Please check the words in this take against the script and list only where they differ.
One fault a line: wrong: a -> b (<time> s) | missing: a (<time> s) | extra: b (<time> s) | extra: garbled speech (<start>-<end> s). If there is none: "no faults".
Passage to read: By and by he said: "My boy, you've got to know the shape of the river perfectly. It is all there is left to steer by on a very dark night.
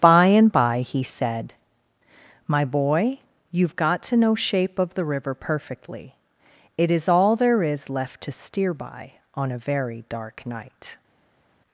missing: the (4.3 s)